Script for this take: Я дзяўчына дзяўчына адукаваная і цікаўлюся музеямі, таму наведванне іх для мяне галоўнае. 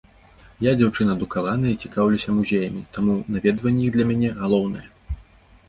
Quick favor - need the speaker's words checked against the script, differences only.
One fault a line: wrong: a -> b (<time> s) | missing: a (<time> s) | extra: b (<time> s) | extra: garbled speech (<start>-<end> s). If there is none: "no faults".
missing: дзяўчына (1.1 s)